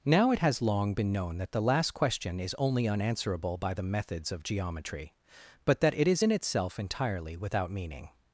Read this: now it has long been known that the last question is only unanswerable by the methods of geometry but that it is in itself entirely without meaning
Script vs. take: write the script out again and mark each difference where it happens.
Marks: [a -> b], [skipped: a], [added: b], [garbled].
now it has long been known that the last question is only unanswerable by the methods of geometry but that it is in itself entirely without meaning